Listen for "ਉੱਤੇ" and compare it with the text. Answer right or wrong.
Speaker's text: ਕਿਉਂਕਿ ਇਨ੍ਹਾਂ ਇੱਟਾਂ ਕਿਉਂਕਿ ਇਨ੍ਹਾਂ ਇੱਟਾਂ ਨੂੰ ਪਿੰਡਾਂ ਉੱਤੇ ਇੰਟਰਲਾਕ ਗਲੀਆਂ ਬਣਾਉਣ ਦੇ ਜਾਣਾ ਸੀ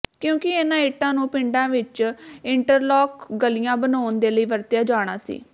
wrong